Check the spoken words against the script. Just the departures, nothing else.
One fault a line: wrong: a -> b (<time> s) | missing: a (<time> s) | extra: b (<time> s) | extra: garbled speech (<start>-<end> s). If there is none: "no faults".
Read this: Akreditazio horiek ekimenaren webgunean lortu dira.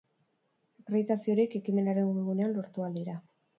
extra: ahal (2.9 s)